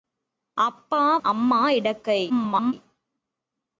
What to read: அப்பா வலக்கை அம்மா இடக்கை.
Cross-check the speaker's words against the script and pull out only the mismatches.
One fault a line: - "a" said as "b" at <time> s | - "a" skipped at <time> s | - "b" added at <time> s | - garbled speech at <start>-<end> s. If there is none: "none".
- "வலக்கை" skipped at 1.2 s
- garbled speech at 2.3-2.7 s